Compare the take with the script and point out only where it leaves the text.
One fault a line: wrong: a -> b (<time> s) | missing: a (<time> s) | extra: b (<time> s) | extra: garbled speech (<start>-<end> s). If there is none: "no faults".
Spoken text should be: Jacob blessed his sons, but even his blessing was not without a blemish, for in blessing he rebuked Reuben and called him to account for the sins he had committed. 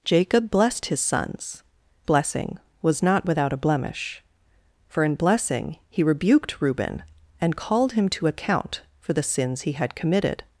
missing: but even his (1.6 s)